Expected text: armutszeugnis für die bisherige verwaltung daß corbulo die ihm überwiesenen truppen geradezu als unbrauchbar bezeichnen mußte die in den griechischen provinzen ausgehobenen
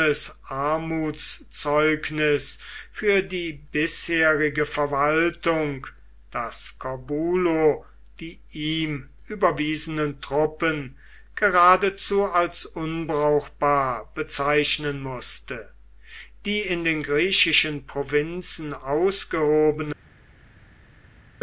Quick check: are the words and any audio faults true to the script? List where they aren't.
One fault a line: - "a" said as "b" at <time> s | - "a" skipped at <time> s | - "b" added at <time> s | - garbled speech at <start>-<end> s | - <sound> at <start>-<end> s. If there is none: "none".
none